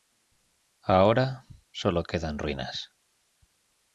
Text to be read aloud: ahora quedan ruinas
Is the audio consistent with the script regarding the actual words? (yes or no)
no